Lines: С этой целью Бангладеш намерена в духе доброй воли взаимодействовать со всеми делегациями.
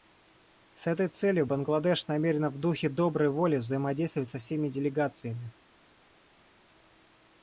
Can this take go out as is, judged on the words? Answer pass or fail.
pass